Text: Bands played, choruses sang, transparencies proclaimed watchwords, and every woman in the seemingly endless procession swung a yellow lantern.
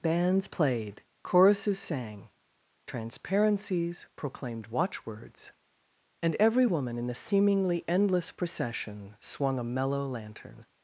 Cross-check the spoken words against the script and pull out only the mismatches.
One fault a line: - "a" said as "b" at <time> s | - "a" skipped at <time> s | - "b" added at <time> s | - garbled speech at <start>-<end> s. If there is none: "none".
- "yellow" said as "mellow" at 9.6 s